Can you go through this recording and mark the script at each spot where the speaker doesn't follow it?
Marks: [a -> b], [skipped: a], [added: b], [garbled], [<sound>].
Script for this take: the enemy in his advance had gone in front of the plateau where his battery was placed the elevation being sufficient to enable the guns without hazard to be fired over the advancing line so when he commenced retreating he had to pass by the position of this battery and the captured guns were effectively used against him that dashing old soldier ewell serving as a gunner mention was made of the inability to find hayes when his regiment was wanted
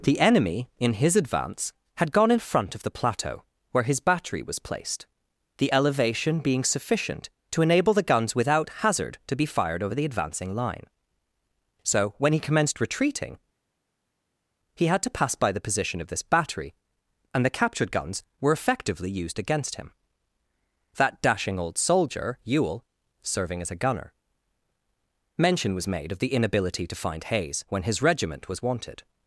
the enemy in his advance had gone in front of the plateau where his battery was placed the elevation being sufficient to enable the guns without hazard to be fired over the advancing line so when he commenced retreating he had to pass by the position of this battery and the captured guns were effectively used against him that dashing old soldier ewell serving as a gunner mention was made of the inability to find hayes when his regiment was wanted